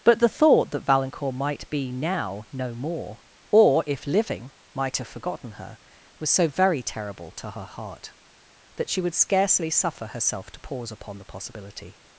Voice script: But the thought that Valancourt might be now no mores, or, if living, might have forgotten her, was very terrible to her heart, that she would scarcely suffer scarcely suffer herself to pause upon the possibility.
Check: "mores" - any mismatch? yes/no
yes